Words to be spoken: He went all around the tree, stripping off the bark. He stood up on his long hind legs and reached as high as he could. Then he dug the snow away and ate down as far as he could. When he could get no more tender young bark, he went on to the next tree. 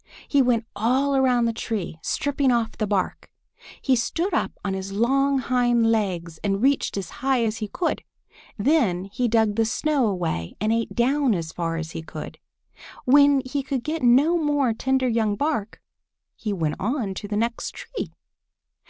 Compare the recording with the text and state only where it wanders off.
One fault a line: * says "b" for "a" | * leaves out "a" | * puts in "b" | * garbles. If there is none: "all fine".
all fine